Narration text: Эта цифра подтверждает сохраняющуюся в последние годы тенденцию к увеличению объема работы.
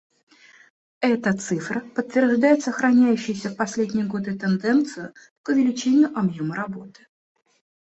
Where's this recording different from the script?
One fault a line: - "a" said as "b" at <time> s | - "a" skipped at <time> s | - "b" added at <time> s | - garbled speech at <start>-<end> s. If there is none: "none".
none